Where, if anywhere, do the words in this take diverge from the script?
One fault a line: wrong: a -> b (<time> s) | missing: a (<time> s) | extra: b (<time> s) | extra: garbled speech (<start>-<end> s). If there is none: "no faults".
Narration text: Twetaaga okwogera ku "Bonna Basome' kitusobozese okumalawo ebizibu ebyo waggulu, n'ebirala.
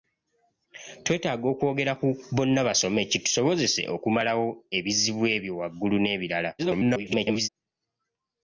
extra: garbled speech (6.6-7.5 s)